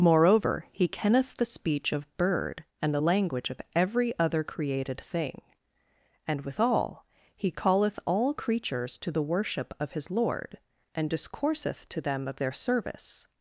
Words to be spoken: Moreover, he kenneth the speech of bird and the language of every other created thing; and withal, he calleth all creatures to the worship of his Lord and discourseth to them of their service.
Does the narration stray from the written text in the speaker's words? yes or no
no